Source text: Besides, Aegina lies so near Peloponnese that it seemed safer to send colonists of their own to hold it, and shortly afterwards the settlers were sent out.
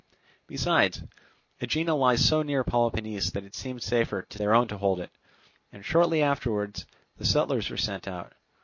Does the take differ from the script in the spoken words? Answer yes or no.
yes